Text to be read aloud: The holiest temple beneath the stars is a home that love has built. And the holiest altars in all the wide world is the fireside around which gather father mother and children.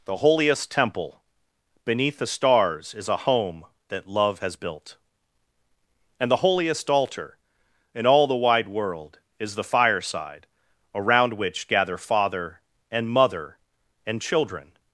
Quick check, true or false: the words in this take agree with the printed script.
false